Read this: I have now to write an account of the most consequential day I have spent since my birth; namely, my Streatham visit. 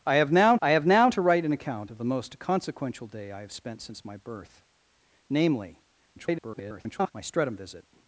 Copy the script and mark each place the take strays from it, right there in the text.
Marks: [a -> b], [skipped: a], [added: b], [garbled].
I have now [added: I have now] to write an account of the most consequential day I have spent since my birth; namely, [garbled] my Streatham visit.